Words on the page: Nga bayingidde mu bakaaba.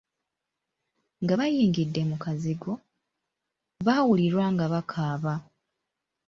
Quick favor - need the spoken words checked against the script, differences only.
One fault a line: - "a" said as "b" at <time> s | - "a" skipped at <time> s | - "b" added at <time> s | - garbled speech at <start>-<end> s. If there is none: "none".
- "kazigo baawulirwa nga" added at 2.2 s